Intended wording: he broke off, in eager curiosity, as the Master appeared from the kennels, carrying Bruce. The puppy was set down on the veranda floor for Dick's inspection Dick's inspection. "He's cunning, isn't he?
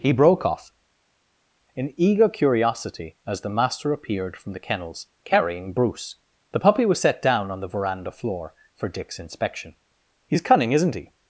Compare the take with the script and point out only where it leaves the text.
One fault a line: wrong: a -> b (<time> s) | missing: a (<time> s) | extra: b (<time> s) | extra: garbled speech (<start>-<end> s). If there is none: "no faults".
missing: Dick's inspection (9.8 s)